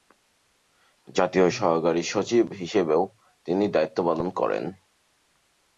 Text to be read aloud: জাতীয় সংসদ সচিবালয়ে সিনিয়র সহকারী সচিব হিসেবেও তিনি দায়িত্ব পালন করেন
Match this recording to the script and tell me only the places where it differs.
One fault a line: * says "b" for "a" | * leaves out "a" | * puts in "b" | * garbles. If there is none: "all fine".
* leaves out "সংসদ সচিবালয়ে সিনিয়র"